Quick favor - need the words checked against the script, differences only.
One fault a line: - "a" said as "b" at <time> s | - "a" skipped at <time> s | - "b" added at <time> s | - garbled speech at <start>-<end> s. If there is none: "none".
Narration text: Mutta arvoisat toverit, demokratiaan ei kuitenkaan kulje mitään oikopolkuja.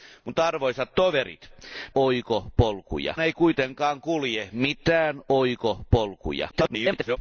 - "demokratiaan" said as "oikopolkuja" at 2.0 s
- garbled speech at 6.5-7.2 s